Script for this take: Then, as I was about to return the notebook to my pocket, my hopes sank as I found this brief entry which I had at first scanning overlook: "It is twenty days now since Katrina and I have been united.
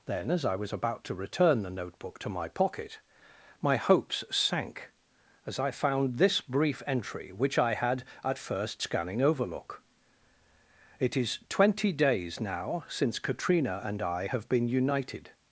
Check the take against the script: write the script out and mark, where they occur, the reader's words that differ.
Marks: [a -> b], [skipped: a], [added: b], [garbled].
Then, as I was about to return the notebook to my pocket, my hopes sank as I found this brief entry which I had at first scanning overlook: "It is twenty days now since Katrina and I have been united.